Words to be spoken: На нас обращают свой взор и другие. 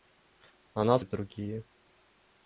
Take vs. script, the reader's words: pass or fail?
fail